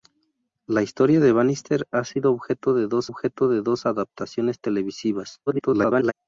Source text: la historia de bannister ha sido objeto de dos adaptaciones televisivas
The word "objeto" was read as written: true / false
true